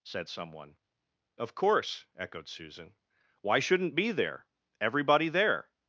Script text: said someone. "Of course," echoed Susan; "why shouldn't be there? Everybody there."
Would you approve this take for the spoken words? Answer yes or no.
yes